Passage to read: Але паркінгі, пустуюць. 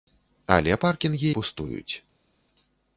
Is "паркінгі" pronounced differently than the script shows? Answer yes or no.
no